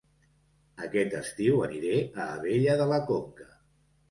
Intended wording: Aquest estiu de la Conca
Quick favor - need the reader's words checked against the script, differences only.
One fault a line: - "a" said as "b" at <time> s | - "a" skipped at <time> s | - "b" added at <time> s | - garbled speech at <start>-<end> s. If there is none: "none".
- "aniré a Abella" added at 1.6 s